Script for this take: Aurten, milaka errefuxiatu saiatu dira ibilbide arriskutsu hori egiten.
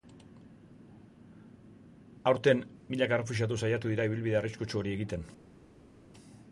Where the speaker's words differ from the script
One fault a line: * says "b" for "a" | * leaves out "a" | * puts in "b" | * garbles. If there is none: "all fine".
all fine